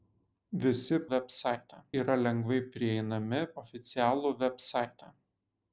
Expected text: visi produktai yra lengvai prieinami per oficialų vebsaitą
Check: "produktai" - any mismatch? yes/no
yes